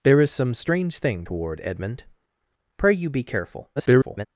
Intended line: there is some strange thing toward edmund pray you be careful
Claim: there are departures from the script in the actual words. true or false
true